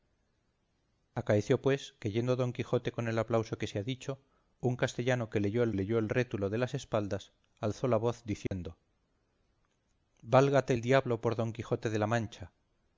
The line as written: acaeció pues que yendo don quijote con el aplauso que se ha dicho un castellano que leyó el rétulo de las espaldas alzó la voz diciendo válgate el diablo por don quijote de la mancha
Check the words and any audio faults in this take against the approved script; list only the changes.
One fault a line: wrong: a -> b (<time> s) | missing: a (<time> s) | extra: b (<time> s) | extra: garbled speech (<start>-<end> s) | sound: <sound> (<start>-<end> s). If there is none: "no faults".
extra: leyó el (5.7 s)
sound: dropout (8.5-8.5 s)